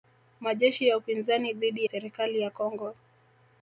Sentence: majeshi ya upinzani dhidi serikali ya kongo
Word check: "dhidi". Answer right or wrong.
right